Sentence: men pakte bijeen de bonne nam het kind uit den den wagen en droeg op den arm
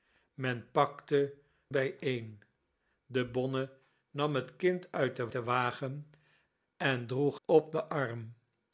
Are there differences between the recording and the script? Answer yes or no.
no